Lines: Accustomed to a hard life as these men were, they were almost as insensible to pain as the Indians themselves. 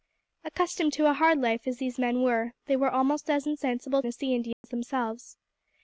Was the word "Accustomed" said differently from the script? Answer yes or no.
no